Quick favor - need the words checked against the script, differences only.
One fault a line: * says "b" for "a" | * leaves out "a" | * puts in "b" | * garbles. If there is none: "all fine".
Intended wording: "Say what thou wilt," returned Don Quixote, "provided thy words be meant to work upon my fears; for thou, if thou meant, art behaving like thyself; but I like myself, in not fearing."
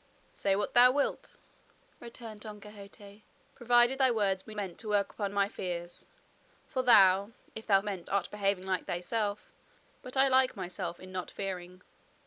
all fine